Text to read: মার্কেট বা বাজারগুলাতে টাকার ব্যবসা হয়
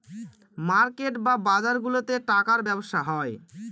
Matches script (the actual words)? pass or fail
pass